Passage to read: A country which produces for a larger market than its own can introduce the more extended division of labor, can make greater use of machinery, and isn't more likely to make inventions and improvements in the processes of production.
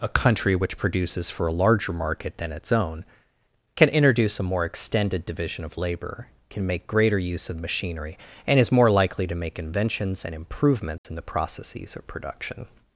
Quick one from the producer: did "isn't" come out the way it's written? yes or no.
no